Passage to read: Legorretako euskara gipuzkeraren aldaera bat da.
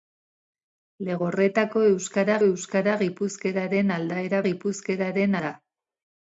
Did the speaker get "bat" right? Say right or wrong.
wrong